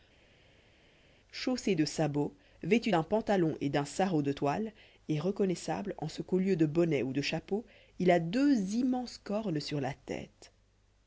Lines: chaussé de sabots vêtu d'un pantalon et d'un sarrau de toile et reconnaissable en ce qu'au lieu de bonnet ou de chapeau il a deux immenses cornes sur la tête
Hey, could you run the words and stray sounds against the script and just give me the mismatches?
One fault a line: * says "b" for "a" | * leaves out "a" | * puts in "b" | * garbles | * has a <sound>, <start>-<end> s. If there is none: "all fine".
all fine